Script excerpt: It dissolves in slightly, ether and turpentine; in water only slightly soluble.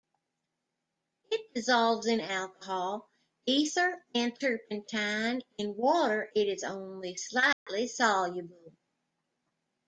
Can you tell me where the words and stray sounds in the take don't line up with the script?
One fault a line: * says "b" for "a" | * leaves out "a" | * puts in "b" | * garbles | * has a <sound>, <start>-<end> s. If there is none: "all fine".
* says "alcohol" for "slightly"
* puts in "it is"
* has a dropout, 7.5-7.7 s